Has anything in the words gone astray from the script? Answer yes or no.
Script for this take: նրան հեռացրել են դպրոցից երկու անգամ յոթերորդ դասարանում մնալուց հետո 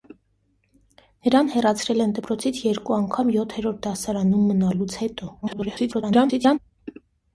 yes